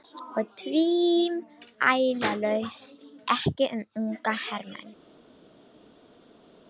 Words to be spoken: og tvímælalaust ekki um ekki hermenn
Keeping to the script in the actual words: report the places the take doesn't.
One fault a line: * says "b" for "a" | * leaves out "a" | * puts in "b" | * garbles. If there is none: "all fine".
* says "unga" for "ekki"